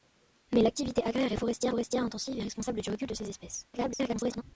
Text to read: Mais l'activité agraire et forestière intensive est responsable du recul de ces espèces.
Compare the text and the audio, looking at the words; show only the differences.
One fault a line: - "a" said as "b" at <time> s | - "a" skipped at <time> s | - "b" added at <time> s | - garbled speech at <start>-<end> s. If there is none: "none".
- "forestière" added at 1.7 s
- garbled speech at 3.7-4.4 s